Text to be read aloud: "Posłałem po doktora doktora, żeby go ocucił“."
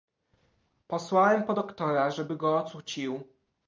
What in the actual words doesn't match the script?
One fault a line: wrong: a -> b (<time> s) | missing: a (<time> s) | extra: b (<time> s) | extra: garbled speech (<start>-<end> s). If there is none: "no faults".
missing: doktora (2.1 s)